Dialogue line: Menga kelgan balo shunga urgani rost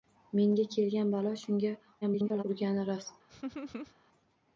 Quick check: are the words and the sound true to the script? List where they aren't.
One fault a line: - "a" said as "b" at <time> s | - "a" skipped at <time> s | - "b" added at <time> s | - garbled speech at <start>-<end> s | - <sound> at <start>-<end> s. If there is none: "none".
- garbled speech at 2.0-2.4 s
- laugh at 3.3-4.0 s